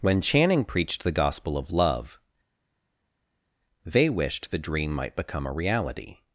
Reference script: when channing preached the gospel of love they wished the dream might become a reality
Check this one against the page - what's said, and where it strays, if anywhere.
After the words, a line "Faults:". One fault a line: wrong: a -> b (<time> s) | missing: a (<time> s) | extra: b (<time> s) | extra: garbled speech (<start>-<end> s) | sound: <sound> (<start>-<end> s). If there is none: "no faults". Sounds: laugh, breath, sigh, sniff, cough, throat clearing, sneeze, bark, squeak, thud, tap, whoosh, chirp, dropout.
when channing preached the gospel of love they wished the dream might become a reality
Faults:
no faults